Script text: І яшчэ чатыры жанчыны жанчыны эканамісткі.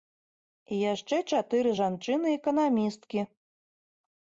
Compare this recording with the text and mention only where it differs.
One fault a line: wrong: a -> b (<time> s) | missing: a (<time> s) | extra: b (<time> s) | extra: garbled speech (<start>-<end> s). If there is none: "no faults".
missing: жанчыны (2.3 s)